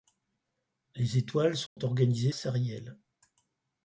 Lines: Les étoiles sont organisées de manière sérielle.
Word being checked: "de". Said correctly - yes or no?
no